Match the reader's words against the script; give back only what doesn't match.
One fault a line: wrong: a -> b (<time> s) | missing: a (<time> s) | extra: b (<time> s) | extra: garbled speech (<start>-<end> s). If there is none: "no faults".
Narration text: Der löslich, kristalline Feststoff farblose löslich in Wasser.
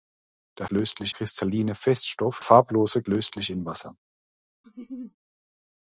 no faults